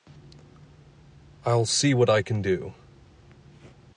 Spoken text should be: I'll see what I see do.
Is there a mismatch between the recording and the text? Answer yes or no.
yes